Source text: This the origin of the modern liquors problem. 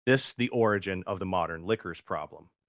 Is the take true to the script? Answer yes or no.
yes